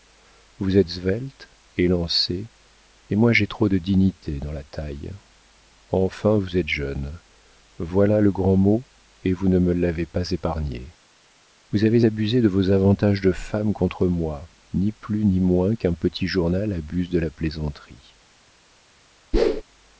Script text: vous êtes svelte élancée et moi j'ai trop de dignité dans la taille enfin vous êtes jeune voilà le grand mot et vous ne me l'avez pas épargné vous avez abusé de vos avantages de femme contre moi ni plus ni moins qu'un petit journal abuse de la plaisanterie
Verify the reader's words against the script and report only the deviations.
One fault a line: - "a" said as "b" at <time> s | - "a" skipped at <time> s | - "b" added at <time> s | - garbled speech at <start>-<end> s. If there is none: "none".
none